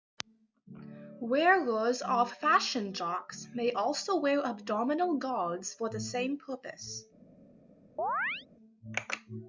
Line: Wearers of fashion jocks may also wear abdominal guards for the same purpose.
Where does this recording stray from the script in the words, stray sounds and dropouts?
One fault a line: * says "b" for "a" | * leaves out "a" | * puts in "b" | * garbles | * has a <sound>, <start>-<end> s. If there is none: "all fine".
* has a chirp, 8.0-8.5 s